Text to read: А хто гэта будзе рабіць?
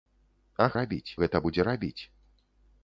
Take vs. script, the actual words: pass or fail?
fail